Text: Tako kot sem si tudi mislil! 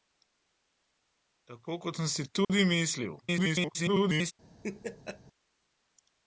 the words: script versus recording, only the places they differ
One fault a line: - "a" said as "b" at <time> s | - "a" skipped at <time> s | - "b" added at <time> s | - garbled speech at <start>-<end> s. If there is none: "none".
- garbled speech at 3.2-4.3 s